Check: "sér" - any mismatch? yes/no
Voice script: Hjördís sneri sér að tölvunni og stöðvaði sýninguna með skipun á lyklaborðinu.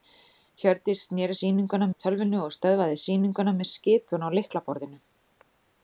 yes